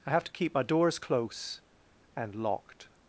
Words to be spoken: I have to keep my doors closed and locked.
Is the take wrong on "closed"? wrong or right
wrong